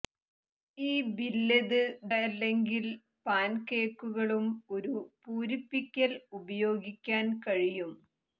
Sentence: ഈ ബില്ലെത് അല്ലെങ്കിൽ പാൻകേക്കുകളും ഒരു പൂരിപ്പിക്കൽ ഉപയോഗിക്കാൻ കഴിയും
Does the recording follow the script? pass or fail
pass